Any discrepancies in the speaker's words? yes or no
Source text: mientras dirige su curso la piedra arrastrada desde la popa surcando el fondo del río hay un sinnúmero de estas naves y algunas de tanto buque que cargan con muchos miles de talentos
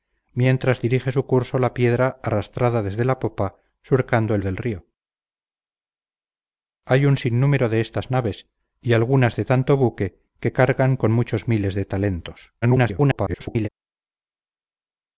yes